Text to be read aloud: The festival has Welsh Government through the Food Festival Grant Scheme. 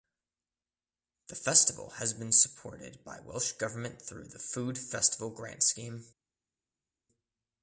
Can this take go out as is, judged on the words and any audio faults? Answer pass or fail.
fail